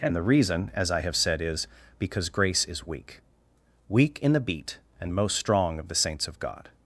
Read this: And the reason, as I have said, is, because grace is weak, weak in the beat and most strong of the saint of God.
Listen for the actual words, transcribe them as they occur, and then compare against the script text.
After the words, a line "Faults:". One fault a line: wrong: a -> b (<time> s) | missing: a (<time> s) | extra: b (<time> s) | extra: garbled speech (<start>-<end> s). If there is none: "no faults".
And the reason, as I have said, is, because grace is weak, weak in the beat and most strong of the saints of God.
Faults:
wrong: saint -> saints (6.0 s)